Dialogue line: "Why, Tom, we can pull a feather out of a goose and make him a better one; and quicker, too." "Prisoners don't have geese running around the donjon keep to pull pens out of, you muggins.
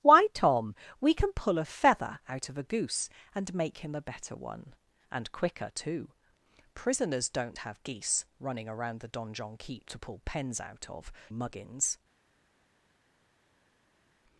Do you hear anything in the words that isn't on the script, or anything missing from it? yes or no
yes